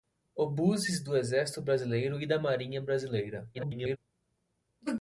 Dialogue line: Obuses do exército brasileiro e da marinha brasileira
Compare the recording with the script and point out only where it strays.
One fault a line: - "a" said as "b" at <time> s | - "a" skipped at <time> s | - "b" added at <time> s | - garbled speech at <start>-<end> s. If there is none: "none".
- garbled speech at 3.5-4.0 s